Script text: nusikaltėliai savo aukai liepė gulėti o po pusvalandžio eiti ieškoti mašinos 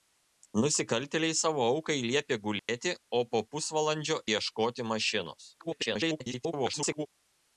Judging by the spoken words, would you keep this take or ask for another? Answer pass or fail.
fail